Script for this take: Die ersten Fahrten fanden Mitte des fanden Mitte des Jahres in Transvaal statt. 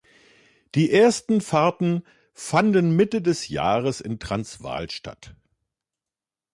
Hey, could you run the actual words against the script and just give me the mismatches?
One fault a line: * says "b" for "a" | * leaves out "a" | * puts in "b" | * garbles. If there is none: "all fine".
* leaves out "fanden Mitte des"